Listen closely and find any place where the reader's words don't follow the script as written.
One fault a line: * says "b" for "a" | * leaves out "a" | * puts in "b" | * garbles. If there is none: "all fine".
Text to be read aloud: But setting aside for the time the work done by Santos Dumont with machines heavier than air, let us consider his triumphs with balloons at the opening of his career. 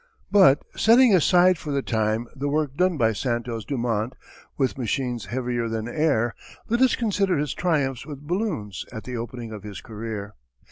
all fine